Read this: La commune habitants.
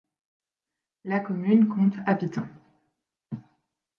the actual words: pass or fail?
fail